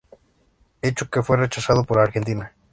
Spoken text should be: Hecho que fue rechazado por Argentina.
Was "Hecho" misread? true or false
false